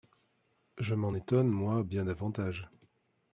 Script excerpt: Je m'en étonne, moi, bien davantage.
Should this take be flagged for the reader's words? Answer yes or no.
no